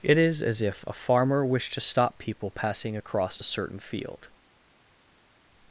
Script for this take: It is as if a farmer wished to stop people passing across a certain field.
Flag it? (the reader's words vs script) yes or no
no